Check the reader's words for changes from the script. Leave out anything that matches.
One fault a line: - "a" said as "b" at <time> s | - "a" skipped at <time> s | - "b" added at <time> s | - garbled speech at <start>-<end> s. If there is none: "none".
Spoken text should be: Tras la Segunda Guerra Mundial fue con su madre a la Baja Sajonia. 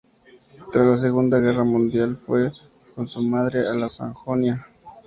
- "Baja" skipped at 3.8 s